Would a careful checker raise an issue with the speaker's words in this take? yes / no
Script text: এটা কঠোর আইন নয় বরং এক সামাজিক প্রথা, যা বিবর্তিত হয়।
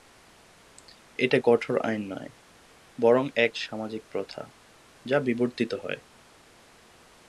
no